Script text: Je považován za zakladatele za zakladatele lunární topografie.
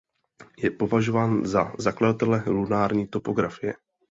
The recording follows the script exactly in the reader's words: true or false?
false